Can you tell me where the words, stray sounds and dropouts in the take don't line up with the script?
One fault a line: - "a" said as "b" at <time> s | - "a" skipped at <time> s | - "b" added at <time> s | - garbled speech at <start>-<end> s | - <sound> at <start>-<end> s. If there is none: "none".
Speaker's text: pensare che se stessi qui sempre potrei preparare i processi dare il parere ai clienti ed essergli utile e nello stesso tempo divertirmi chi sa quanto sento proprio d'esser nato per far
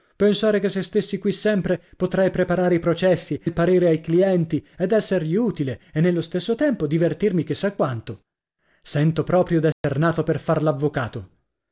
- "dare" skipped at 3.4 s
- dropout at 9.7-9.8 s